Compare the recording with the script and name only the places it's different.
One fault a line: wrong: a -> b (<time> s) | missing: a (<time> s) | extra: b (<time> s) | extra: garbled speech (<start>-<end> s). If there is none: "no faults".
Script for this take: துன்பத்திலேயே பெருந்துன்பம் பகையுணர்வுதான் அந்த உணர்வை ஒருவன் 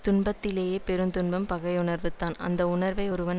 no faults